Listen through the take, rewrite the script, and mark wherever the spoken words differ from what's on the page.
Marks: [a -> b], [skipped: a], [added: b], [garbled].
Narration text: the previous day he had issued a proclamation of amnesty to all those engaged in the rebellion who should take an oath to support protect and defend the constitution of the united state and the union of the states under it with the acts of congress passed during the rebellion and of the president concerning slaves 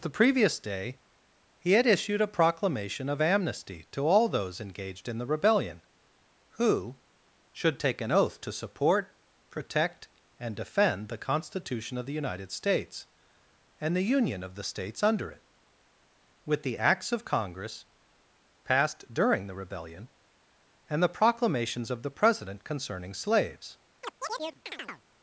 the previous day he had issued a proclamation of amnesty to all those engaged in the rebellion who should take an oath to support protect and defend the constitution of the united [state -> states] and the union of the states under it with the acts of congress passed during the rebellion and [added: the proclamations] of the president concerning slaves